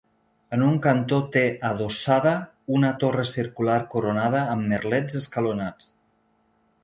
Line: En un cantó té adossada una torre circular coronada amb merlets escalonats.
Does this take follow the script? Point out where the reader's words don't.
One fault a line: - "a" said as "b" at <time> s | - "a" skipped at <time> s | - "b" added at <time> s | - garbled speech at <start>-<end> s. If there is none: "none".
none